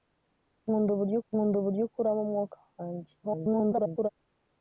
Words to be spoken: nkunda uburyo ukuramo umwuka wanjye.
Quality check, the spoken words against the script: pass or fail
fail